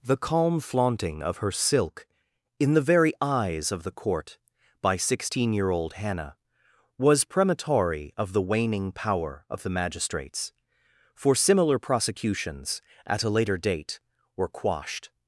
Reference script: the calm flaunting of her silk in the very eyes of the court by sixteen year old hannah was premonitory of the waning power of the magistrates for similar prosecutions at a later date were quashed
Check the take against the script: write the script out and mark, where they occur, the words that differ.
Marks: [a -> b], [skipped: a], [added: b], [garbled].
the calm flaunting of her silk in the very eyes of the court by sixteen year old hannah was premonitory of the waning power of the magistrates for similar prosecutions at a later date were quashed